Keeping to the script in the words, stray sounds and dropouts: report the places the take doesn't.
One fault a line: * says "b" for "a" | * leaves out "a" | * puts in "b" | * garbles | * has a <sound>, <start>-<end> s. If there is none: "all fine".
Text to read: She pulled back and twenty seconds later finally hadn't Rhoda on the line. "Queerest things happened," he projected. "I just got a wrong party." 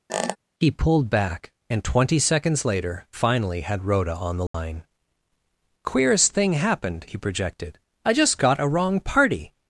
* has a squeak, 0.1-0.4 s
* says "He" for "She"
* says "had" for "hadn't"
* has a dropout, 4.5-4.5 s
* says "thing" for "things"